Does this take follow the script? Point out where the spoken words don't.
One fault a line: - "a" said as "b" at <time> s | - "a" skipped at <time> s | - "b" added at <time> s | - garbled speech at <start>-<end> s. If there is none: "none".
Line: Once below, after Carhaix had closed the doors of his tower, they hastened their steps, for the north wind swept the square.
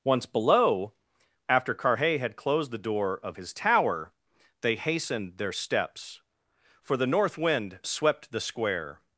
- "doors" said as "door" at 2.8 s